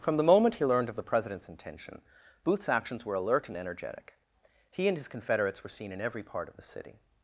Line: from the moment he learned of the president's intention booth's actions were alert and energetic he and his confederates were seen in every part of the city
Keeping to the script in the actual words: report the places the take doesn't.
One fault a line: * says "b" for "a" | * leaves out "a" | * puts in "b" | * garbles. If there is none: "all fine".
all fine